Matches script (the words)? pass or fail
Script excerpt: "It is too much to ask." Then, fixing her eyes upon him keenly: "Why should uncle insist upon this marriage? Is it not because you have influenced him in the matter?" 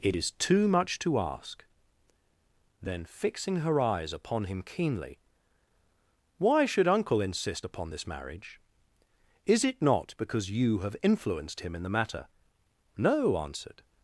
fail